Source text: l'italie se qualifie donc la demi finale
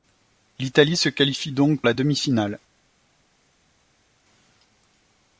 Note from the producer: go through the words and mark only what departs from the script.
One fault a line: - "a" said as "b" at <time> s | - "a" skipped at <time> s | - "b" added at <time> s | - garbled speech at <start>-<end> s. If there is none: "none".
none